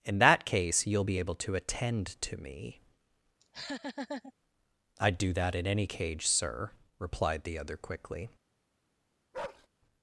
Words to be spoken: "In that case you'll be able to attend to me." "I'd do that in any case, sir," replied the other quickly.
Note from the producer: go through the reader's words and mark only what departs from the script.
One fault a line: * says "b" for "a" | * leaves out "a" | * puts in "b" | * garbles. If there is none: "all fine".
* says "cage" for "case"